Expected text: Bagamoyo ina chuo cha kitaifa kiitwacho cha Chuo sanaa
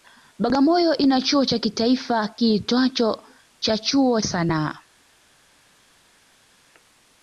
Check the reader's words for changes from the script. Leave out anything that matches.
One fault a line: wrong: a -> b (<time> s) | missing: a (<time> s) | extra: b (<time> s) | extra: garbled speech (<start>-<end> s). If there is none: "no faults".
no faults